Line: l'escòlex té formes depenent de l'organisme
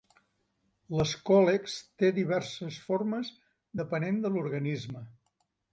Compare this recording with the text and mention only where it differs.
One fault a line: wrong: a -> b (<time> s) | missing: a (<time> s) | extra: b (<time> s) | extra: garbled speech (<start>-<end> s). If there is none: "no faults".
extra: diverses (2.2 s)